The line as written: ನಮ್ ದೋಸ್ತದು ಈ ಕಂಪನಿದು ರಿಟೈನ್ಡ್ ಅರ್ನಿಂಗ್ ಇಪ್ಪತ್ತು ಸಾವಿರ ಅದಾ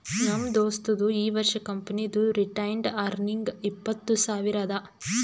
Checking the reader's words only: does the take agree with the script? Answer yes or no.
no